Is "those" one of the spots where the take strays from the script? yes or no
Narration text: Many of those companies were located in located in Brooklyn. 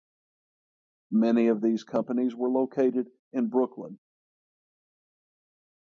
yes